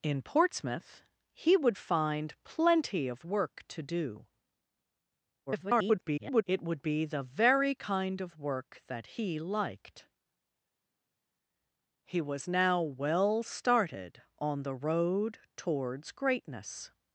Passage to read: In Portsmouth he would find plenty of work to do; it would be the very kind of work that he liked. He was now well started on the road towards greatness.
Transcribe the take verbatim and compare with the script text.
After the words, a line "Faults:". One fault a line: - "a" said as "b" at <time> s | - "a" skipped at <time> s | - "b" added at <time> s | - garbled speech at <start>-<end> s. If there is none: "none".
In Portsmouth he would find plenty of work to do; [garbled] it would be the very kind of work that he liked. He was now well started on the road towards greatness.
Faults:
- garbled speech at 5.5-6.4 s